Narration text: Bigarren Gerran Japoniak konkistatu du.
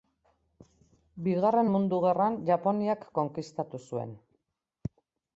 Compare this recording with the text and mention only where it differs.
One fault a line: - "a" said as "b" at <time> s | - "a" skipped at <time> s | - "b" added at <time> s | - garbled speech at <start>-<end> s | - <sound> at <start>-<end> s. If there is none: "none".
- "Mundu" added at 1.7 s
- "du" said as "zuen" at 3.9 s